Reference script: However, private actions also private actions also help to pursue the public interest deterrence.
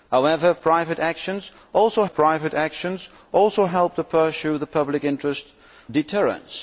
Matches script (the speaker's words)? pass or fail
pass